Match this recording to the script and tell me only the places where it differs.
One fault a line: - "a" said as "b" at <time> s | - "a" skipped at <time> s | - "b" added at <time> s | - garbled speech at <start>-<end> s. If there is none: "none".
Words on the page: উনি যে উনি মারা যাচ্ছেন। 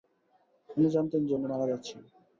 - "জানতেন" added at 0.9 s